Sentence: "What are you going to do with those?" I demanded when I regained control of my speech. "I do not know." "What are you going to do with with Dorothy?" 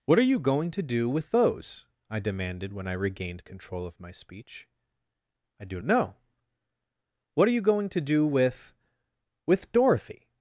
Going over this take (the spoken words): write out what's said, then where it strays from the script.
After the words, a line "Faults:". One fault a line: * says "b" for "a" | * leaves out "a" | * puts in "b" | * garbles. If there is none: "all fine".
"What are you going to do with those?" I demanded when I regained control of my speech. "I do know." "What are you going to do with with Dorothy?"
Faults:
* leaves out "not"